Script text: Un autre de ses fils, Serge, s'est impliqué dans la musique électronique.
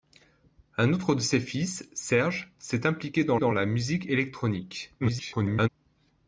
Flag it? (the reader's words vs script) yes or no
yes